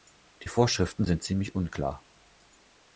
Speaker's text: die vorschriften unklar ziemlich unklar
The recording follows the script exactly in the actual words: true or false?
false